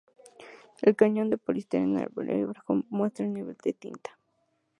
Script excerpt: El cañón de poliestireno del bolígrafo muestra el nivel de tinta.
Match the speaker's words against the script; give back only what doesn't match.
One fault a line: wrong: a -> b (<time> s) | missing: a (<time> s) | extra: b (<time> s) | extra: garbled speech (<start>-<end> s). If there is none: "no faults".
no faults